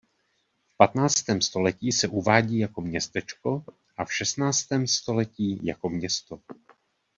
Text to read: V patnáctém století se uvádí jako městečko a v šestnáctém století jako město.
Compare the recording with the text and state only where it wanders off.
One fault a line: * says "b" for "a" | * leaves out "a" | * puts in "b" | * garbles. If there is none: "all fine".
all fine